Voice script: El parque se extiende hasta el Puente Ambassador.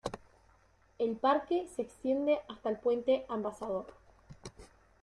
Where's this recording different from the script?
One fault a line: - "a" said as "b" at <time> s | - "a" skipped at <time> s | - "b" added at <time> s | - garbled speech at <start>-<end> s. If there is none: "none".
none